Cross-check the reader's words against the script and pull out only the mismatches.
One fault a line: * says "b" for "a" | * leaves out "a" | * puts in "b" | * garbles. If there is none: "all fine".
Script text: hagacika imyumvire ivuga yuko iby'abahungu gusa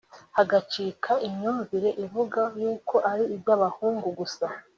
* puts in "ari"